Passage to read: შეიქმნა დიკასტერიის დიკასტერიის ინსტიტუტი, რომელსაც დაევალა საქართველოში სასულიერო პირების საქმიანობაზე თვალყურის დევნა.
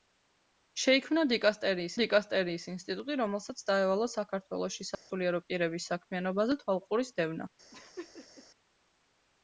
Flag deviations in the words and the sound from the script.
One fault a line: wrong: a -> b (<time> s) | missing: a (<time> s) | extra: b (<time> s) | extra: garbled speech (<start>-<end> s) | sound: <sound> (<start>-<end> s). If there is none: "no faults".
sound: dropout (4.9-5.1 s)
sound: laugh (7.7-8.5 s)